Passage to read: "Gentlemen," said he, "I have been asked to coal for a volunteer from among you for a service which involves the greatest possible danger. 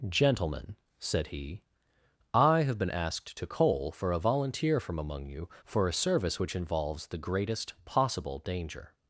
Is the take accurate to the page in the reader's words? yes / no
yes